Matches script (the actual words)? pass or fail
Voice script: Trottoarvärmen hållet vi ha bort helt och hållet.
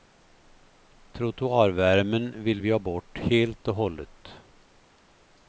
fail